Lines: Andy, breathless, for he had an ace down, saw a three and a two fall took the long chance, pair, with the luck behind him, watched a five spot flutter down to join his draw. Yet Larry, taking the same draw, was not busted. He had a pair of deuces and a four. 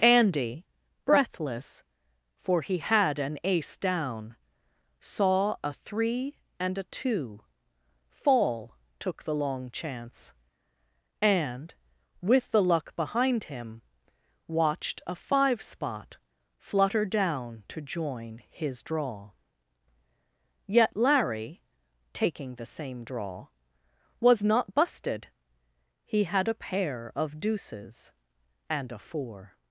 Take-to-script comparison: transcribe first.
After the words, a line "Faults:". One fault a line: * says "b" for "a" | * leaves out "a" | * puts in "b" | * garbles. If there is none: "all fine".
Andy, breathless, for he had an ace down, saw a three and a two fall took the long chance, and, with the luck behind him, watched a five spot flutter down to join his draw. Yet Larry, taking the same draw, was not busted. He had a pair of deuces and a four.
Faults:
* says "and" for "pair"